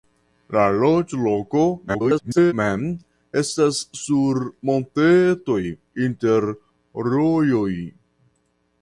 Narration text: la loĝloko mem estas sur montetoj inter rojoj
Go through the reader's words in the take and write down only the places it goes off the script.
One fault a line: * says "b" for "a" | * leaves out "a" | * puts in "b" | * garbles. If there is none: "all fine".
* garbles